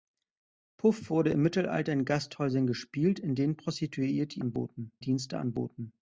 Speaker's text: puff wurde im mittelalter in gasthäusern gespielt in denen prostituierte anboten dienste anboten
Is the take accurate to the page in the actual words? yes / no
yes